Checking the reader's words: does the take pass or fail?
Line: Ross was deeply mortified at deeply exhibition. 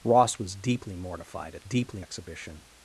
pass